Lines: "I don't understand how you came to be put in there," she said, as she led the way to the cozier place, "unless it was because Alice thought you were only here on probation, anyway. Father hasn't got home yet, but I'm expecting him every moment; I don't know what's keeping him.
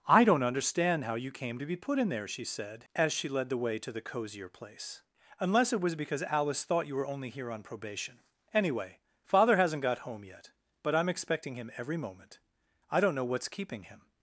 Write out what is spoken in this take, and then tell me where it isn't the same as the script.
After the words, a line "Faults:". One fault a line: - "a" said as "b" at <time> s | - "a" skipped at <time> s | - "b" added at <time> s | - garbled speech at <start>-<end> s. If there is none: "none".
"I don't understand how you came to be put in there," she said, as she led the way to the cozier place, "unless it was because Alice thought you were only here on probation, anyway. Father hasn't got home yet, but I'm expecting him every moment; I don't know what's keeping him.
Faults:
none